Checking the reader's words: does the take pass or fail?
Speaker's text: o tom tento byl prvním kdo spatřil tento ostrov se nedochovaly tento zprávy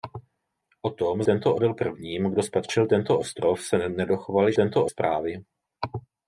pass